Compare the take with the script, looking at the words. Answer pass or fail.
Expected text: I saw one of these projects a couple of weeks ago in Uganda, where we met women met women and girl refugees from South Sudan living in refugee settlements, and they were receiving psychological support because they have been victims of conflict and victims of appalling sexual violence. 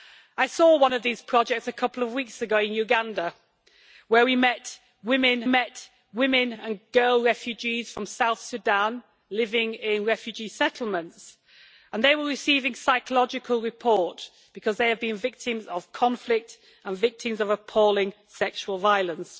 pass